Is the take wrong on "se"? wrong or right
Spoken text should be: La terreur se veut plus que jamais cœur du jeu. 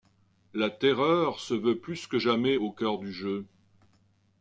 right